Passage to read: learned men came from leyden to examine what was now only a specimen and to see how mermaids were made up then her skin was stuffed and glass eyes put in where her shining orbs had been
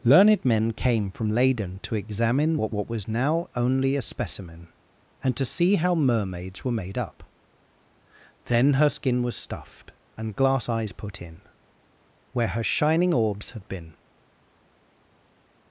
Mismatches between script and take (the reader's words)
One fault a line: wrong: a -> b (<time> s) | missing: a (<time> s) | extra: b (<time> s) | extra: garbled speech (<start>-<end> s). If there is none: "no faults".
extra: what (2.7 s)